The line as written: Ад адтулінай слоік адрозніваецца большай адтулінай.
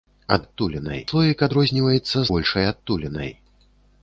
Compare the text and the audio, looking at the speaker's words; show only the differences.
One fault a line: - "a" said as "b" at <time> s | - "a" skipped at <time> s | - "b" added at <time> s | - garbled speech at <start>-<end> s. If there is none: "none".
none